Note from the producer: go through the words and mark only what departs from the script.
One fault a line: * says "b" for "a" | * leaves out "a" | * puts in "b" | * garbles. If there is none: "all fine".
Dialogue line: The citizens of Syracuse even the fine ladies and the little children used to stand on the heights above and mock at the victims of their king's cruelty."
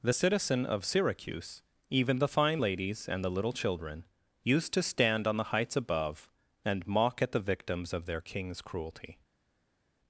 * says "citizen" for "citizens"